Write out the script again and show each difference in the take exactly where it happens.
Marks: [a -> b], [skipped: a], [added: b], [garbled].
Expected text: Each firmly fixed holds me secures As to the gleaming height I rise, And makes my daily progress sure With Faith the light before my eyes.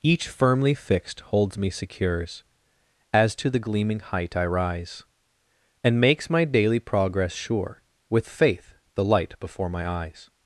Each firmly fixed holds me secures As to the gleaming height I rise, And makes my daily progress sure With Faith the light before my eyes.